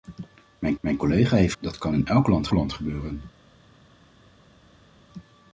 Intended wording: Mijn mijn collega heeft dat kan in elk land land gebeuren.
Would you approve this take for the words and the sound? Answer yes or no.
yes